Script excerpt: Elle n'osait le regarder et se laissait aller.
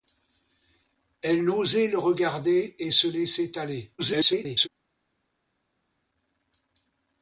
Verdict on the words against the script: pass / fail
fail